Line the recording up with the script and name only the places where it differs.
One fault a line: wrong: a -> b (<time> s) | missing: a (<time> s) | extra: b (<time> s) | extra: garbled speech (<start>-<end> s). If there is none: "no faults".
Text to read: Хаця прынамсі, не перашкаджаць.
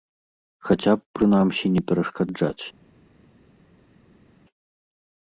extra: б (0.9 s)